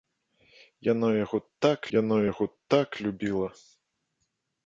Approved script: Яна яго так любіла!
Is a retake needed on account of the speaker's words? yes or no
yes